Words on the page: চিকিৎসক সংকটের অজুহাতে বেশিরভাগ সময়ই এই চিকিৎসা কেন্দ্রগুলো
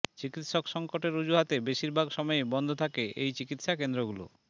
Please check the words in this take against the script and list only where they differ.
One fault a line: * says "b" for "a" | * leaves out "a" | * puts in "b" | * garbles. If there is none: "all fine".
* puts in "বন্ধ থাকে"